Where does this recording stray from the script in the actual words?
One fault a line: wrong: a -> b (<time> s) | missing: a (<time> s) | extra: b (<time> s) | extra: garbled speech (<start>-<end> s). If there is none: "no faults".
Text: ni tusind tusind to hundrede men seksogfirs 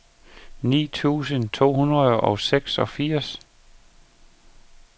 missing: tusind (1.5 s)
wrong: men -> og (2.2 s)